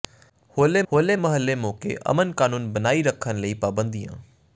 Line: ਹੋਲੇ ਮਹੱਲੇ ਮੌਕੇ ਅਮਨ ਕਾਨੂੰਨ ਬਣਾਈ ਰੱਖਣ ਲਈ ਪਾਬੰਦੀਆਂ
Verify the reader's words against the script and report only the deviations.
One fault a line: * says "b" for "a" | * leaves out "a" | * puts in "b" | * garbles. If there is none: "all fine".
* puts in "ਹੋਲੇ"